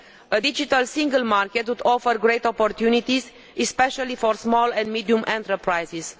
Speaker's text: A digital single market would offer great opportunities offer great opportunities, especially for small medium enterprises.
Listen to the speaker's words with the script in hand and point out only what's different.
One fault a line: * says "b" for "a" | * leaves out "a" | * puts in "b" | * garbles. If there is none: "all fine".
* leaves out "offer great opportunities"
* puts in "and"